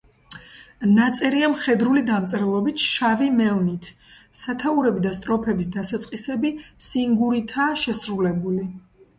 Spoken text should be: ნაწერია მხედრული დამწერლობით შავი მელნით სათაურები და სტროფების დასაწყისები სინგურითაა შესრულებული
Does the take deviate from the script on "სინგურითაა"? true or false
false